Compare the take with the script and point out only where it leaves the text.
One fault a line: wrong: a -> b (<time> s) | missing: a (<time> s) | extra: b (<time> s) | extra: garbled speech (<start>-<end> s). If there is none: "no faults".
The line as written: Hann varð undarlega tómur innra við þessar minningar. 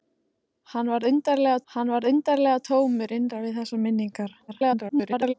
extra: hann varð undarlega (1.7 s)
extra: garbled speech (4.5-5.3 s)